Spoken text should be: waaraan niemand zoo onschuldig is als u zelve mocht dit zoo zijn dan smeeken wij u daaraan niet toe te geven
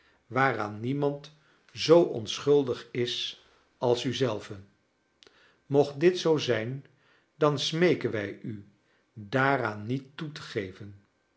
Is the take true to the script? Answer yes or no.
yes